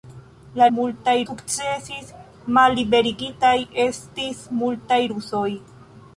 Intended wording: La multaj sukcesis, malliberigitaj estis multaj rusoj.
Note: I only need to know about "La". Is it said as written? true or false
true